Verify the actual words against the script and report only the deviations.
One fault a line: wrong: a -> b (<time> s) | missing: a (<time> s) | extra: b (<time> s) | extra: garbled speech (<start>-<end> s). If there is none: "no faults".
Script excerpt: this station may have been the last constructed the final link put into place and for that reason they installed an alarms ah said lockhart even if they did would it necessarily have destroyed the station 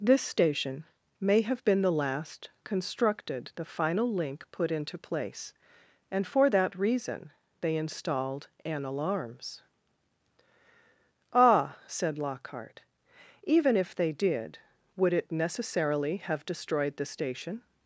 no faults